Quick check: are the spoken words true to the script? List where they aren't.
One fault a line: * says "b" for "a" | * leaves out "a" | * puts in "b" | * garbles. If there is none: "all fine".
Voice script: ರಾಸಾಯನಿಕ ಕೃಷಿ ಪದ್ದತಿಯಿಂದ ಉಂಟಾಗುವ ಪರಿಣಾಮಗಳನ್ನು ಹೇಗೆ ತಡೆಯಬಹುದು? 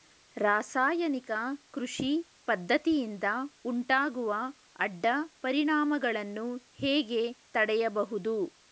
* puts in "ಅಡ್ಡ"